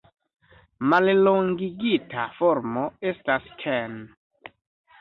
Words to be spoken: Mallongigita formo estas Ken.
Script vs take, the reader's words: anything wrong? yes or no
no